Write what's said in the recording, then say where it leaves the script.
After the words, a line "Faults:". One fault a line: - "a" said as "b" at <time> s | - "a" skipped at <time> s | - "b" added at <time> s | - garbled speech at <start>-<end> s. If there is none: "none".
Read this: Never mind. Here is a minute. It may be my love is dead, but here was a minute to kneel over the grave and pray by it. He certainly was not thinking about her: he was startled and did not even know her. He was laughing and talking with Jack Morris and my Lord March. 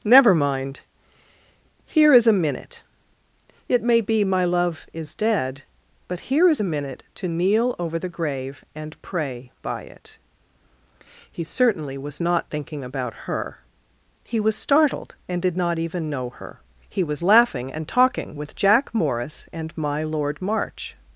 Never mind. Here is a minute. It may be my love is dead, but here is a minute to kneel over the grave and pray by it. He certainly was not thinking about her: he was startled and did not even know her. He was laughing and talking with Jack Morris and my Lord March.
Faults:
- "was" said as "is" at 6.5 s